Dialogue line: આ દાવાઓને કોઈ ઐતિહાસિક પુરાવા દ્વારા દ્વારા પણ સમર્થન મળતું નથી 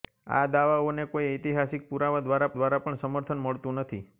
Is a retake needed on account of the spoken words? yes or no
no